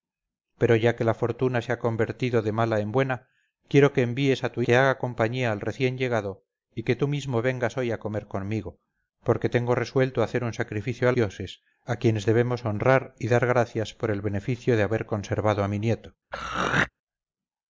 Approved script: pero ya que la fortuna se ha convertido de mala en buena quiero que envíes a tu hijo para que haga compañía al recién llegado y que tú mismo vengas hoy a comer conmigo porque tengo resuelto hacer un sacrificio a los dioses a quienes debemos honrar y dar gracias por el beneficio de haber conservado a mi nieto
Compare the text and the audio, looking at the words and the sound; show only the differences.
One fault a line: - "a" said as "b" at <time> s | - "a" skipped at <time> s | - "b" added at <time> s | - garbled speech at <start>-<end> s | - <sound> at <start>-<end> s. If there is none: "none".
- "hijo para" skipped at 4.6 s
- "los" skipped at 11.1 s
- throat clearing at 16.3-16.9 s